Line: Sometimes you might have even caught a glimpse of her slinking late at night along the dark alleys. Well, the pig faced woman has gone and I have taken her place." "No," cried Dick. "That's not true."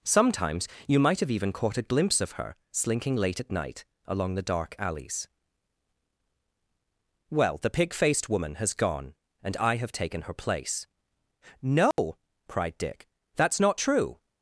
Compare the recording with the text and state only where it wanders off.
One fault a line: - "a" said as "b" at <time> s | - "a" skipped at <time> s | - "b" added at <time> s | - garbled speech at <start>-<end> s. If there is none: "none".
none